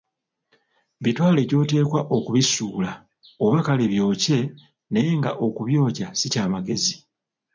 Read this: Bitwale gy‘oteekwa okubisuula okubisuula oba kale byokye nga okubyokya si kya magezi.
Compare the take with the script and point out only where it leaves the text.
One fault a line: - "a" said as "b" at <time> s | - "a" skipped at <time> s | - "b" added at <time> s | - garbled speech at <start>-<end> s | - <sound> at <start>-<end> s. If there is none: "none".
- "okubisuula" skipped at 2.9 s
- "naye" added at 4.9 s